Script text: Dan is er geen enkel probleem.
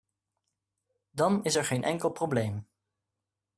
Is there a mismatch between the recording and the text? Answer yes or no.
no